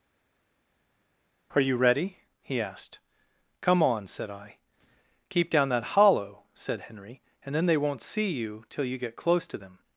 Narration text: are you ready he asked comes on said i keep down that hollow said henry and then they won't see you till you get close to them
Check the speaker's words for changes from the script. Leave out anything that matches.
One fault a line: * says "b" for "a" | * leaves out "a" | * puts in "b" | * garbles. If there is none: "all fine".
* says "come" for "comes"